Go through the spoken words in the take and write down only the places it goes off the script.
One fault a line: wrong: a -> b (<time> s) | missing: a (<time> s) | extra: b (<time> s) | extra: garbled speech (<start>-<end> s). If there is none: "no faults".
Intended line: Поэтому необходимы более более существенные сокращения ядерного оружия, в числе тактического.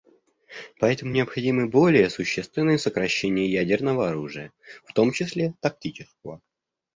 missing: более (2.1 s)
extra: том (4.9 s)